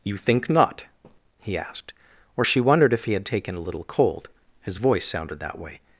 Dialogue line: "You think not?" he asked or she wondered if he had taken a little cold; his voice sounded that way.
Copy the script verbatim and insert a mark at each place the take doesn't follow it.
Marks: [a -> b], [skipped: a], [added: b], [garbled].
"You think not?" he asked or she wondered if he had taken a little cold; his voice sounded that way.